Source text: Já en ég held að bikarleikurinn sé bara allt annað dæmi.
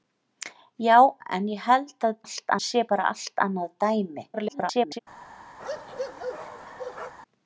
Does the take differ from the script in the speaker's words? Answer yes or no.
yes